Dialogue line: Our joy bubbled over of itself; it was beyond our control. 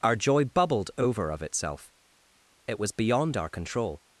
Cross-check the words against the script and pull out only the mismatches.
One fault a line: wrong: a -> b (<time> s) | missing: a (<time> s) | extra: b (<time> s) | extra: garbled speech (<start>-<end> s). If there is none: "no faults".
no faults